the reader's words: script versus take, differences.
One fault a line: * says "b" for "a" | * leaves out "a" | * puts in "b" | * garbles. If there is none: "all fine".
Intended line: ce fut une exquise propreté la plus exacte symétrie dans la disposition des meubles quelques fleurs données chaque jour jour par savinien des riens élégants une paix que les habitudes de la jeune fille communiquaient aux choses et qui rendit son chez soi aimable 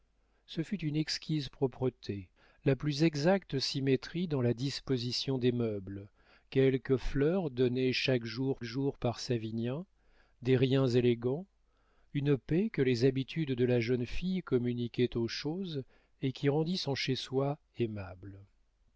all fine